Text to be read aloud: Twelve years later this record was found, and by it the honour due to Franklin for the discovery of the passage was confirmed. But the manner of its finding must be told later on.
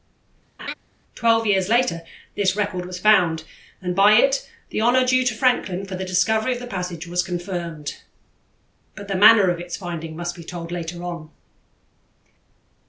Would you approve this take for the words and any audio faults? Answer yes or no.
no